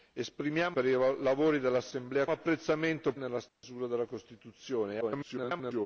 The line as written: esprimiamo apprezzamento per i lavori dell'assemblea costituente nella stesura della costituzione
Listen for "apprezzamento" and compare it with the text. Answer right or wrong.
wrong